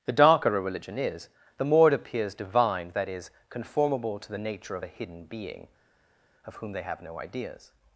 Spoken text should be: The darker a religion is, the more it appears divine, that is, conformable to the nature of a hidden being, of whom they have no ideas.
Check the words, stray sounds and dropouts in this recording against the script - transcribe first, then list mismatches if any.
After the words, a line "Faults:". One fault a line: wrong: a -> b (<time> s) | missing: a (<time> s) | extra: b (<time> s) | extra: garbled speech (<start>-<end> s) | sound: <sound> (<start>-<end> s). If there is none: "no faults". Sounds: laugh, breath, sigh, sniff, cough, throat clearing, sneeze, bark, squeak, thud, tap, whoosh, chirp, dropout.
The darker a religion is, the more it appears divine, that is, conformable to the nature of a hidden being, of whom they have no ideas.
Faults:
no faults